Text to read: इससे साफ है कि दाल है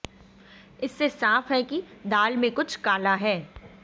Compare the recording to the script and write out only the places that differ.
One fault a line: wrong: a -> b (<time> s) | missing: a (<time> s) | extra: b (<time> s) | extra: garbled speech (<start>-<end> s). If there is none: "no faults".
extra: में कुछ काला (2.4 s)